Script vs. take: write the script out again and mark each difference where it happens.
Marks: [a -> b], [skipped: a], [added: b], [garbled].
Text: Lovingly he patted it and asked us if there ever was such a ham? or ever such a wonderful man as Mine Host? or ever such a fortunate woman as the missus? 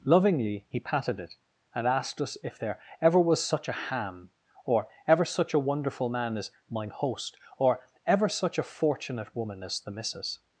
Lovingly he patted it and asked us if there ever was such a ham? or ever such a wonderful man as Mine Host? or ever such a fortunate woman as the missus?